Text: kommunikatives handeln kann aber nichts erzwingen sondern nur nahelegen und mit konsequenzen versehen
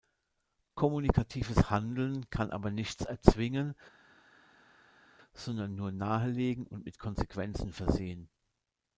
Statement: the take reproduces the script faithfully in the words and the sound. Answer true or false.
true